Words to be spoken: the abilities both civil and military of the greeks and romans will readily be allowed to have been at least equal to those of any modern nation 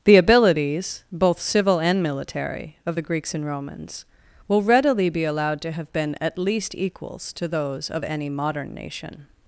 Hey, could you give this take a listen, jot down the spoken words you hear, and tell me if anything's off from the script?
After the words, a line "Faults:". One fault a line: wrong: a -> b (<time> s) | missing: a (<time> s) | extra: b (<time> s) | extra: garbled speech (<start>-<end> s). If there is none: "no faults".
the abilities both civil and military of the greeks and romans will readily be allowed to have been at least equals to those of any modern nation
Faults:
wrong: equal -> equals (6.7 s)